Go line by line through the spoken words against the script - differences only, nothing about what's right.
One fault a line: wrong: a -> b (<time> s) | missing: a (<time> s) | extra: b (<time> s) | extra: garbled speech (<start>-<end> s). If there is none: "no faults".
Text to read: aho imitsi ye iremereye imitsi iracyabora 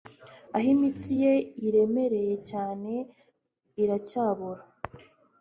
wrong: imitsi -> cyane (2.5 s)